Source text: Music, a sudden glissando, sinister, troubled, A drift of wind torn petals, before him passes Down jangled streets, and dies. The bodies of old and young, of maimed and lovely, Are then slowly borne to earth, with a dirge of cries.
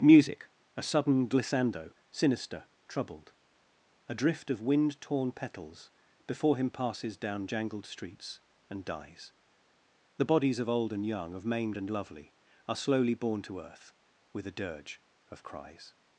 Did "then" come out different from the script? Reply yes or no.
yes